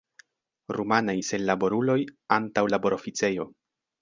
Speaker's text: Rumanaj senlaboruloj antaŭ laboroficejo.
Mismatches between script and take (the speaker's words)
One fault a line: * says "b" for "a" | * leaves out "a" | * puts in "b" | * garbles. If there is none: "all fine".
all fine